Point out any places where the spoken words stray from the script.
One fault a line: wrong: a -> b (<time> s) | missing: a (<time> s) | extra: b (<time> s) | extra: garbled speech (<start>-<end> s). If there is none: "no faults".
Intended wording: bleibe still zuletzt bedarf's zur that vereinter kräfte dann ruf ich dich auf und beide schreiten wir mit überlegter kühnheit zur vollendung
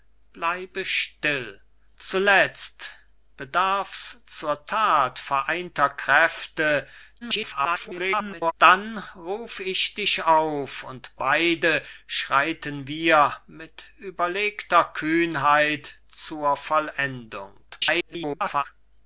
extra: garbled speech (7.2-8.5 s)
extra: garbled speech (17.7-18.6 s)